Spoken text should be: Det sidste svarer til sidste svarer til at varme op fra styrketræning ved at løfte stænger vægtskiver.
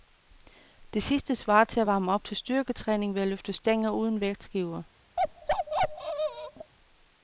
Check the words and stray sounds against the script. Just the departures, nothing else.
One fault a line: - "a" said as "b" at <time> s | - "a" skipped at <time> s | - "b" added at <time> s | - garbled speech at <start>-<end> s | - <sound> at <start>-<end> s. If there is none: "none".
- "sidste svarer til" skipped at 1.8 s
- "fra" said as "til" at 2.2 s
- "uden" added at 3.9 s
- bark at 5.2-6.7 s